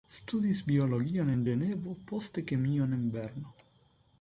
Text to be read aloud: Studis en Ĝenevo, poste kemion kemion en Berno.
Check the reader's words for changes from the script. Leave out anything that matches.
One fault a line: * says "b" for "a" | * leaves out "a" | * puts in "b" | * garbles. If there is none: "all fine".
* puts in "biologion"
* leaves out "kemion"